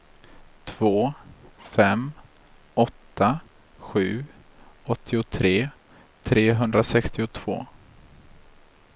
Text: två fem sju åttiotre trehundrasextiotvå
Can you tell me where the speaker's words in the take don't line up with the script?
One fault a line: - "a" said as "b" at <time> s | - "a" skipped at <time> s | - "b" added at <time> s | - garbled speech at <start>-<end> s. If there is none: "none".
- "åtta" added at 2.7 s